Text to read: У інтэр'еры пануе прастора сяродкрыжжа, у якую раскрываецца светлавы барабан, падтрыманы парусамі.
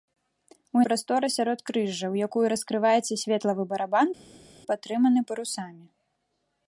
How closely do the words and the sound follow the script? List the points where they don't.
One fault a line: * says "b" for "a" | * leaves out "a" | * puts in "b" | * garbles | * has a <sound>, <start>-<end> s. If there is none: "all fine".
* leaves out "інтэр'еры пануе"